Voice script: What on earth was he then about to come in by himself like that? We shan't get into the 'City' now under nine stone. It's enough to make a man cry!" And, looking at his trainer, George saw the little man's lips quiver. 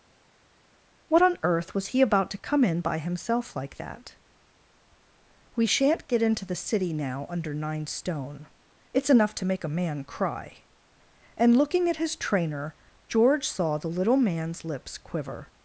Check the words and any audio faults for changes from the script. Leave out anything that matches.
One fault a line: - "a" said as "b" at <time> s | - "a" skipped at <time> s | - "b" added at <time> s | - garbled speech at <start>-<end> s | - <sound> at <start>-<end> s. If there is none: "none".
- "then" skipped at 2.0 s